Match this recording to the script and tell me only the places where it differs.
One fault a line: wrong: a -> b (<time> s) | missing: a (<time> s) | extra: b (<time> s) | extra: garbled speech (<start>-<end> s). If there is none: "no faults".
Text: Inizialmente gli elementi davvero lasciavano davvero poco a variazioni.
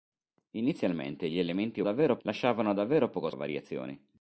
no faults